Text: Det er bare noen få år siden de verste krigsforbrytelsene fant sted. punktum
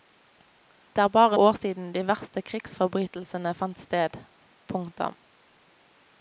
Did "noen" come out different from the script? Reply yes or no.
yes